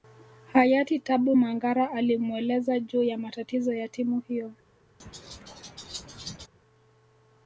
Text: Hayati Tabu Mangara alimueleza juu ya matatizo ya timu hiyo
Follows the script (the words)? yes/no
yes